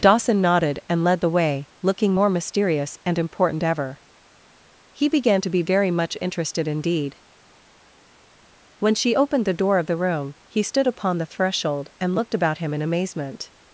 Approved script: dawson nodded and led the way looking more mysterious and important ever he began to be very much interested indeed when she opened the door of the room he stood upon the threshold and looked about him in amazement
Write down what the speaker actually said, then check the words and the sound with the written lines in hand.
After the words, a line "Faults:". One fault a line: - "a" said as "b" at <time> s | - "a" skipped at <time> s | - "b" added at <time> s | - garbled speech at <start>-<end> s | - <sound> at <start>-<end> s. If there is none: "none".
dawson nodded and led the way looking more mysterious and important ever he began to be very much interested indeed when she opened the door of the room he stood upon the threshold and looked about him in amazement
Faults:
none